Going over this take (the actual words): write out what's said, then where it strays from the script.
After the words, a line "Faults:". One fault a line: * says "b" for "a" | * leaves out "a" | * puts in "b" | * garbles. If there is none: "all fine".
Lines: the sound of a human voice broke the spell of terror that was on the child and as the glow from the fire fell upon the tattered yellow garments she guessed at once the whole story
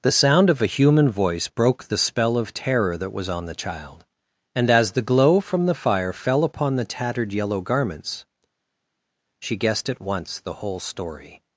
the sound of a human voice broke the spell of terror that was on the child and as the glow from the fire fell upon the tattered yellow garments she guessed at once the whole story
Faults:
all fine